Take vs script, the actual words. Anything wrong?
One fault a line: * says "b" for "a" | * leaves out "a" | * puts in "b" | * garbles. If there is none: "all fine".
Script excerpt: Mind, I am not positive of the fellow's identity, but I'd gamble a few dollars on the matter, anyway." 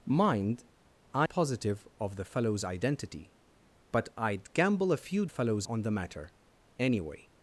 * leaves out "am not"
* says "fellow's" for "dollars"